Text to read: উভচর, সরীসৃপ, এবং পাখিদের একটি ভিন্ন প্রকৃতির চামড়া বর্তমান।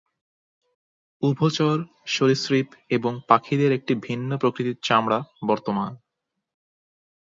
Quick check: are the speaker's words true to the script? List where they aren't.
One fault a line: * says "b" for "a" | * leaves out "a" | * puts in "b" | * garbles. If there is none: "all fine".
all fine